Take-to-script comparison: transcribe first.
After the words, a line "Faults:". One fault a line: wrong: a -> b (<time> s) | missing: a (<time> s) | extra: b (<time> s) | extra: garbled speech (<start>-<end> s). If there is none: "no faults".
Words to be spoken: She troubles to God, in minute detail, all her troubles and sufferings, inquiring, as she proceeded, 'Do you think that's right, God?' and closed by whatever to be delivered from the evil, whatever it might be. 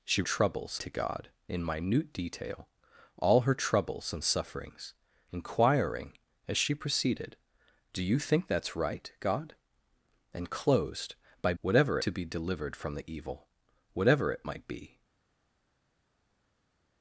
She troubles to God, in minute detail, all her troubles and sufferings, inquiring, as she proceeded, 'Do you think that's right, God?' and closed by whatever to be delivered from the evil, whatever it might be.
Faults:
no faults